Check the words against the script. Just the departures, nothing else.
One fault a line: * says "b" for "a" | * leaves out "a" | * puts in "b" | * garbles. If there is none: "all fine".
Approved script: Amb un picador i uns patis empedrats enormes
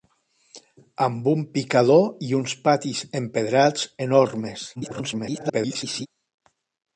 * garbles